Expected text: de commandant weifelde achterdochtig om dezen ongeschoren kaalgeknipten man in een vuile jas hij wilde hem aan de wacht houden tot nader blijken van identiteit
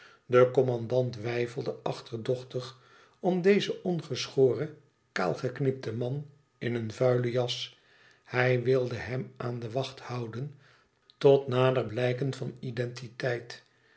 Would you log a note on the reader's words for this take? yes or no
no